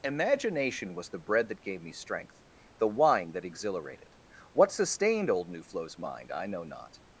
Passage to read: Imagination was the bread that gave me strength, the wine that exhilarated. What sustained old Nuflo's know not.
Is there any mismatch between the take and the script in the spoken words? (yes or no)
yes